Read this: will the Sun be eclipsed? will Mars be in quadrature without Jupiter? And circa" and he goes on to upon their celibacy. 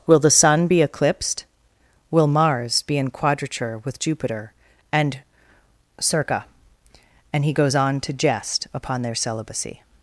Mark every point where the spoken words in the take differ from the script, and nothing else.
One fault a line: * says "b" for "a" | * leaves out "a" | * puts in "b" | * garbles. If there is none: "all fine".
* says "with" for "without"
* puts in "jest"